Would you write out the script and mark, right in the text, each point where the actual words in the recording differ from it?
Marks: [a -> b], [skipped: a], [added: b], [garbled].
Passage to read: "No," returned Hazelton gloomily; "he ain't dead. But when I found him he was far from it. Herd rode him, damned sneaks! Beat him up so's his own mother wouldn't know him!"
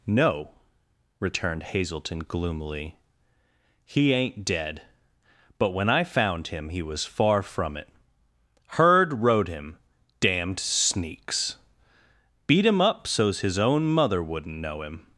"No," returned Hazelton gloomily; "he ain't dead. But when I found him he was far from it. Herd rode him, damned sneaks! Beat him up so's his own mother wouldn't know him!"